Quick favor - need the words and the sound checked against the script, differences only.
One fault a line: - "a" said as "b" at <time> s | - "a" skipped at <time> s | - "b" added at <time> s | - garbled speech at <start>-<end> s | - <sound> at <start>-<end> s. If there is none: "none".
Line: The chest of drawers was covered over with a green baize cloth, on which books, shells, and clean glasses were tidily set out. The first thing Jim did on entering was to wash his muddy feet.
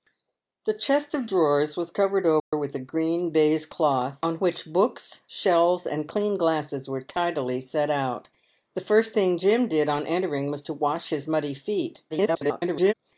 - dropout at 2.4-2.5 s
- garbled speech at 12.1-12.9 s